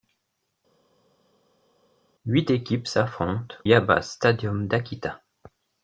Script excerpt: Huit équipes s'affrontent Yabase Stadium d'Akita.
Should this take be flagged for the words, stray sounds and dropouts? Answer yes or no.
no